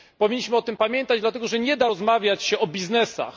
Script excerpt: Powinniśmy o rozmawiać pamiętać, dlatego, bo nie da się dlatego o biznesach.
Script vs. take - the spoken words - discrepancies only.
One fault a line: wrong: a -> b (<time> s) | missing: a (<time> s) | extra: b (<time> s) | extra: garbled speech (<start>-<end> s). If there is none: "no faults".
wrong: rozmawiać -> tym (0.6 s)
wrong: bo -> że (1.5 s)
wrong: dlatego -> rozmawiać (1.9 s)